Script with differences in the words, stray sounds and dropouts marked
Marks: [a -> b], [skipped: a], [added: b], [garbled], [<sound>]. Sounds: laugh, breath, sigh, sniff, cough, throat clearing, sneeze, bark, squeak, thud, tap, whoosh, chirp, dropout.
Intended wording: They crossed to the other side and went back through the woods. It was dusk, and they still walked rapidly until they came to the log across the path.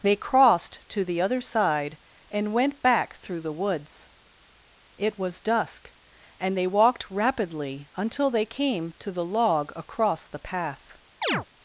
They crossed to the other side and went back through the woods. It was dusk, and they [skipped: still] walked rapidly until they came to the log across the path. [chirp]